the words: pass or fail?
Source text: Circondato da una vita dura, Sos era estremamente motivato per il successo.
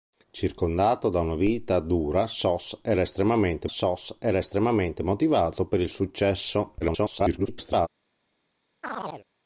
fail